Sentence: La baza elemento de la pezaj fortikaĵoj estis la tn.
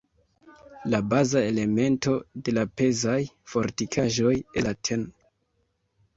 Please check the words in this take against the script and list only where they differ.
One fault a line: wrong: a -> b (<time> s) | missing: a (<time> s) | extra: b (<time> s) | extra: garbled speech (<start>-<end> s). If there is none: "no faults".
missing: estis (4.3 s)